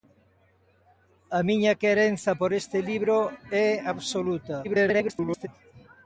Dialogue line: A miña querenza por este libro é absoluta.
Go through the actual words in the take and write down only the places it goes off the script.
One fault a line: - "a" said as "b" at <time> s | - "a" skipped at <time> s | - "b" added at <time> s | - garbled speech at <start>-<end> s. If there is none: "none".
- garbled speech at 4.6-5.5 s